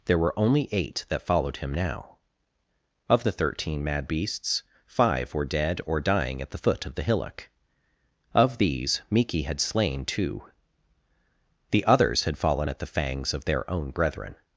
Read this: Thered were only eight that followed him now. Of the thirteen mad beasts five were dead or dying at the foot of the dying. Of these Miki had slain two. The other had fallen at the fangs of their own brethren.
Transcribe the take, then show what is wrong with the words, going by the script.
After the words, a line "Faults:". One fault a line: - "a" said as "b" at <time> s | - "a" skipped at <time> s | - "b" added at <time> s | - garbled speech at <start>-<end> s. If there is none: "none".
There were only eight that followed him now. Of the thirteen mad beasts five were dead or dying at the foot of the hillock. Of these Miki had slain two. The others had fallen at the fangs of their own brethren.
Faults:
- "Thered" said as "There" at 0.1 s
- "dying" said as "hillock" at 7.0 s
- "other" said as "others" at 11.9 s